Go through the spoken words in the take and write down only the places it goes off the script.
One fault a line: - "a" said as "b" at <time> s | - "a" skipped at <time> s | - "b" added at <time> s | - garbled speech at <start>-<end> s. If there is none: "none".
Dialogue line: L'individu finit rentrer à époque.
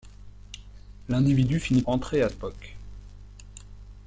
none